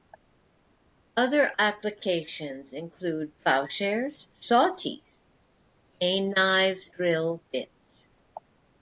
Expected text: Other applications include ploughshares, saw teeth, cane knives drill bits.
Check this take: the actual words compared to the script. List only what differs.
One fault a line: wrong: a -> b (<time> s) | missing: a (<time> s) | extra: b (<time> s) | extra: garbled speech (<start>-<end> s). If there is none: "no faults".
no faults